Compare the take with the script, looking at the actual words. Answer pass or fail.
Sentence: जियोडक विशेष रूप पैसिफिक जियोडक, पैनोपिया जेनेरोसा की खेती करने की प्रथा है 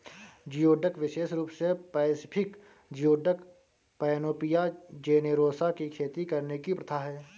fail